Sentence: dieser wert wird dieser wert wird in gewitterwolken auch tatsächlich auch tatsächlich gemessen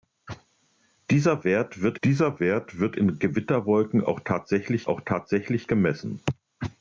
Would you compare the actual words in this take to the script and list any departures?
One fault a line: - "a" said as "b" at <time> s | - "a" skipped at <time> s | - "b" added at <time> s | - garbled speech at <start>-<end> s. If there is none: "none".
none